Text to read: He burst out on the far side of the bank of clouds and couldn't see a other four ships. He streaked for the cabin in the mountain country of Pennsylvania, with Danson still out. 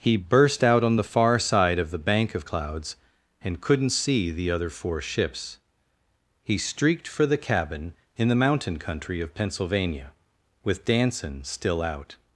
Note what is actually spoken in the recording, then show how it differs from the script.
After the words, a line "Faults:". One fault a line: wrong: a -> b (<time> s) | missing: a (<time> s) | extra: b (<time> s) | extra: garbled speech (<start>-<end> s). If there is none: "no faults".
He burst out on the far side of the bank of clouds and couldn't see the other four ships. He streaked for the cabin in the mountain country of Pennsylvania, with Danson still out.
Faults:
wrong: a -> the (4.3 s)